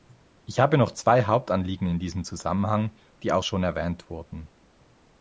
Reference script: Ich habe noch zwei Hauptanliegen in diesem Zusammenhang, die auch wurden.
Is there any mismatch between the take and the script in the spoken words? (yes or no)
yes